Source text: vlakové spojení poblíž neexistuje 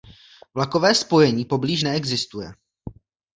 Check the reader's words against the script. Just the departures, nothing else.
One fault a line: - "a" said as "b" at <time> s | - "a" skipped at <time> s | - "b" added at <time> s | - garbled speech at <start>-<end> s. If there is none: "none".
none